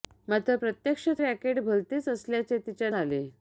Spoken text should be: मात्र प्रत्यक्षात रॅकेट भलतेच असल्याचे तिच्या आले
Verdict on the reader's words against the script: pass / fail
pass